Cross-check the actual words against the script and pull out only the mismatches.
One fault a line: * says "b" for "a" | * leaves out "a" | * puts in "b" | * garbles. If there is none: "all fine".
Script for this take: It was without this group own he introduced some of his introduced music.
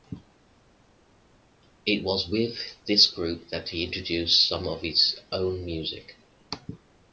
* says "with" for "without"
* says "that" for "own"
* says "own" for "introduced"